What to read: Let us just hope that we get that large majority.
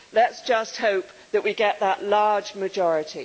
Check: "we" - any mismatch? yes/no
no